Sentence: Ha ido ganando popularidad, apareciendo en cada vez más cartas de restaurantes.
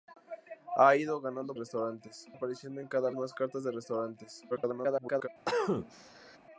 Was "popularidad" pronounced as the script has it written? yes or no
no